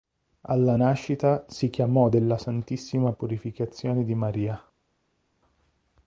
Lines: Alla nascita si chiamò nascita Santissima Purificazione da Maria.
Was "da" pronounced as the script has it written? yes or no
no